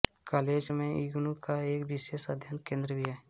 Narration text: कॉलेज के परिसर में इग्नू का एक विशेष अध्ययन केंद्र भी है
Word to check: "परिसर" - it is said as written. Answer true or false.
false